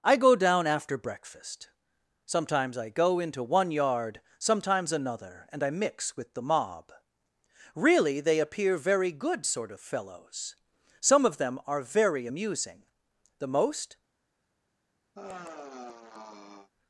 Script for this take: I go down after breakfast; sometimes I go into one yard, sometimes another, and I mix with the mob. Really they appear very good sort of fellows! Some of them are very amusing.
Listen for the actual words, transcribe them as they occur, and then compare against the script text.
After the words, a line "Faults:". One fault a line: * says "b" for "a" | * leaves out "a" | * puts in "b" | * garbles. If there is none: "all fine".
I go down after breakfast; sometimes I go into one yard, sometimes another, and I mix with the mob. Really they appear very good sort of fellows! Some of them are very amusing. The most
Faults:
* puts in "The most"